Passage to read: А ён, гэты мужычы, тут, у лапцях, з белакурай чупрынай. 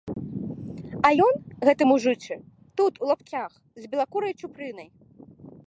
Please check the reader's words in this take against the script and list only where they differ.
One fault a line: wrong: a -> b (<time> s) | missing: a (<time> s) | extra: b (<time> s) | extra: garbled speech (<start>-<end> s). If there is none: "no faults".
no faults